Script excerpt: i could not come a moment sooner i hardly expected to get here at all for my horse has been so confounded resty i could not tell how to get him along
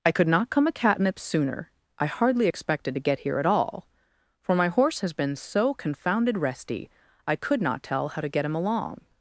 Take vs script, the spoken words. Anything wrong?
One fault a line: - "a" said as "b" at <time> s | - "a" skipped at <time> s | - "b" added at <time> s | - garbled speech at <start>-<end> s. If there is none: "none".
- "moment" said as "catnip" at 0.7 s